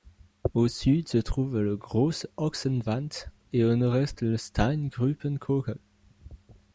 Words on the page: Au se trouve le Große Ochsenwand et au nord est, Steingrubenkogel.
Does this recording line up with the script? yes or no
no